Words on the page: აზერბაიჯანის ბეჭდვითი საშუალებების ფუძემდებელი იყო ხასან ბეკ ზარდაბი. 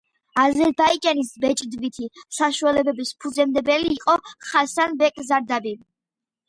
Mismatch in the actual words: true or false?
false